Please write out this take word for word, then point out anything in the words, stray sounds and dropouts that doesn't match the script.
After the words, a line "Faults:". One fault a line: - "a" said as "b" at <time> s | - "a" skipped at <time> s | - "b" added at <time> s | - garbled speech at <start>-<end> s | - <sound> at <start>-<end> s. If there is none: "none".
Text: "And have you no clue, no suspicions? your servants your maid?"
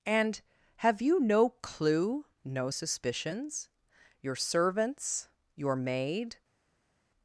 "And have you no clue, no suspicions? your servants your maid?"
Faults:
none